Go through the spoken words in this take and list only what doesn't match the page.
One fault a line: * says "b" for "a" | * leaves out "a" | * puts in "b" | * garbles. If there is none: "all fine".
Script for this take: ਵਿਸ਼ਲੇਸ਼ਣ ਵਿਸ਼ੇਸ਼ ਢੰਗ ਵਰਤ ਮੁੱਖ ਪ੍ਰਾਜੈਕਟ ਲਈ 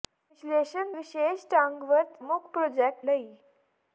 all fine